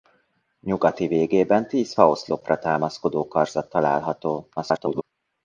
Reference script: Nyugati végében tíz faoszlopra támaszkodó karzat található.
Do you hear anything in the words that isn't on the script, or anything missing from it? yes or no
yes